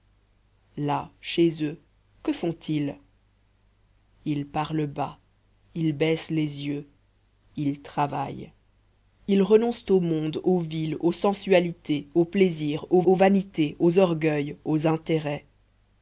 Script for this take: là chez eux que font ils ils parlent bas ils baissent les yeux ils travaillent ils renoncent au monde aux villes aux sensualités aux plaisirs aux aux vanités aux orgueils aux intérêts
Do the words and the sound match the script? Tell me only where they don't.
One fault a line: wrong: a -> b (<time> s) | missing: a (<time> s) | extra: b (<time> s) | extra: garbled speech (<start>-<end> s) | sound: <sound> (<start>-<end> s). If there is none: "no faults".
no faults